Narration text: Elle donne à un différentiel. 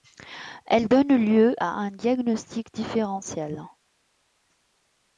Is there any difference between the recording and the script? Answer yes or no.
yes